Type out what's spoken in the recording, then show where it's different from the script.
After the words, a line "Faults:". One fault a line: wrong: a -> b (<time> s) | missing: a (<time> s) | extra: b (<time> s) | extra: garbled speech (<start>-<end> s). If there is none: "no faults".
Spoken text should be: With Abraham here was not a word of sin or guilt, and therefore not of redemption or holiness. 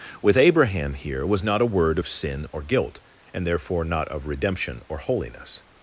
With Abraham here was not a word of sin or guilt, and therefore not of redemption or holiness.
Faults:
no faults